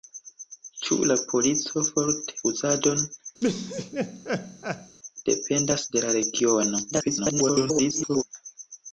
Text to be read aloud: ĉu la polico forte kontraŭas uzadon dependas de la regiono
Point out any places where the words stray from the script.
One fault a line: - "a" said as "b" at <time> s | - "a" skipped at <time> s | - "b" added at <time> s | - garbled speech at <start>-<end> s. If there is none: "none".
- "kontraŭas" skipped at 2.4 s
- garbled speech at 6.9-8.2 s